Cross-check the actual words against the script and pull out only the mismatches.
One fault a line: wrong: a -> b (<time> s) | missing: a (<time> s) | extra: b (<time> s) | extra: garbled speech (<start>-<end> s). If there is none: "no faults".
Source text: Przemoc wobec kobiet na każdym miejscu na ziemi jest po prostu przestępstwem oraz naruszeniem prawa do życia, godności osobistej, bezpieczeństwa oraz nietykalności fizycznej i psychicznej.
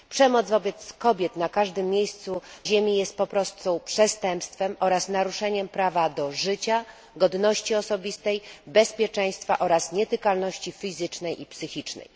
missing: na (2.4 s)